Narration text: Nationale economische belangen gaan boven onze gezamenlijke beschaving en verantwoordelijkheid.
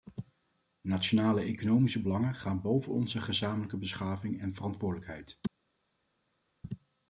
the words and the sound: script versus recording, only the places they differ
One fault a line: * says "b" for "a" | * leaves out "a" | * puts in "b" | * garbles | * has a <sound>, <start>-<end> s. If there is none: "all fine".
all fine